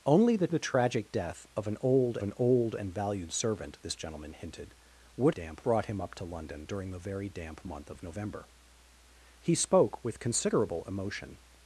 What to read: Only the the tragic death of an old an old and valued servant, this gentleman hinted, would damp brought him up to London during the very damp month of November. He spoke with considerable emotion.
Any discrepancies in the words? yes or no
no